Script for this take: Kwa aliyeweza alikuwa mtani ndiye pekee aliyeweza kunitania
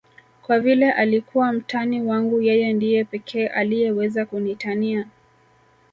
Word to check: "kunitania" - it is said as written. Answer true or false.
true